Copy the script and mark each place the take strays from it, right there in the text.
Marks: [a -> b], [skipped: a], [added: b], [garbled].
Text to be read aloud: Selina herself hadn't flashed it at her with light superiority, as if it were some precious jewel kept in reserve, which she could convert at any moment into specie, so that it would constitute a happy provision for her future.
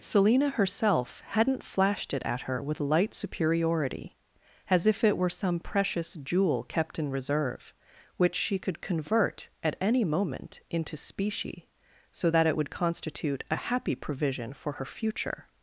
Selina herself hadn't flashed it at her with light superiority, as if it were some precious jewel kept in reserve, which she could convert at any moment into specie, so that it would constitute a happy provision for her future.